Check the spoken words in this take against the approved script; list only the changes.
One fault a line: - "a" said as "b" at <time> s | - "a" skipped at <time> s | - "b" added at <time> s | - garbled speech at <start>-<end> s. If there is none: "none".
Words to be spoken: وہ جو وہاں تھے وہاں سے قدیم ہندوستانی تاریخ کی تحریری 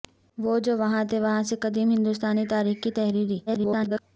- garbled speech at 3.5-4.0 s